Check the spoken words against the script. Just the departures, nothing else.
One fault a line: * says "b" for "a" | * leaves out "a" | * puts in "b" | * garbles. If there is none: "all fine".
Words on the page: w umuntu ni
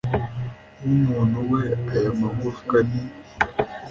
* puts in "we aya magufwa"